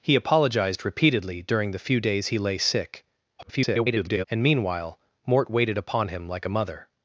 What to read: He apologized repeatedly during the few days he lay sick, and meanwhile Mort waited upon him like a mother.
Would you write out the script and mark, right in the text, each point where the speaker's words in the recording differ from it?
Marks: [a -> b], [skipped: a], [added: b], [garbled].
He apologized repeatedly during the few days he lay sick, [garbled] and meanwhile Mort waited upon him like a mother.